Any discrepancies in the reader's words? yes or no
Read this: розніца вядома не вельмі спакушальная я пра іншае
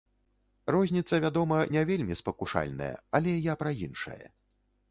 yes